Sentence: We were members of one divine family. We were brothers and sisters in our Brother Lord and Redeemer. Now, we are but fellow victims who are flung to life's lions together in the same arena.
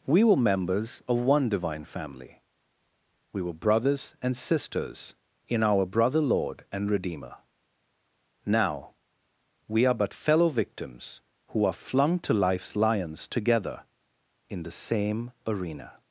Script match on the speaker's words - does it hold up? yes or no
yes